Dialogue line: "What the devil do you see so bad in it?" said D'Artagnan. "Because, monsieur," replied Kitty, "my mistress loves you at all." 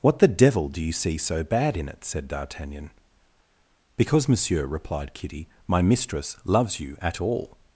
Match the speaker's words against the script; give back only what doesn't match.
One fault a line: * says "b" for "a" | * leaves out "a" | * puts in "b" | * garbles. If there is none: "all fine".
all fine